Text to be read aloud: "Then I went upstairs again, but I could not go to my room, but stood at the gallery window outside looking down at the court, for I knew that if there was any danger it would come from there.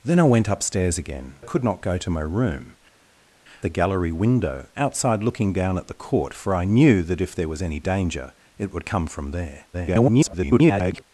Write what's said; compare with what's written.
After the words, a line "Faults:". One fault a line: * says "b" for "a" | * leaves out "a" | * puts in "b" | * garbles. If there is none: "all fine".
"Then I went upstairs again, I could not go to my room, the gallery window outside looking down at the court, for I knew that if there was any danger it would come from there. [garbled]
Faults:
* leaves out "but"
* leaves out "but stood at"
* garbles